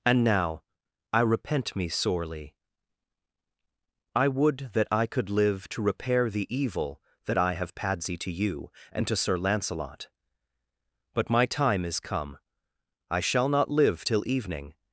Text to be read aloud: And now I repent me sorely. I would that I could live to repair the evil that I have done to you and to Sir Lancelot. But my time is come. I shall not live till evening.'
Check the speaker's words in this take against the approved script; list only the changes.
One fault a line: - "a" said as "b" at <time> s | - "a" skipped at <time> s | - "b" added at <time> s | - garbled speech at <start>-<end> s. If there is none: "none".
- "done" said as "padsy" at 7.8 s